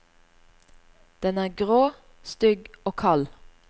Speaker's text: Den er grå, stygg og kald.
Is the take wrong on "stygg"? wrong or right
right